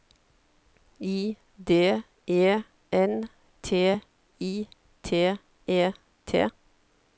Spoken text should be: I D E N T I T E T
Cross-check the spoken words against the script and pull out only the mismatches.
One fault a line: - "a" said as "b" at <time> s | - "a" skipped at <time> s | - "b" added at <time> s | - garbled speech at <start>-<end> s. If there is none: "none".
none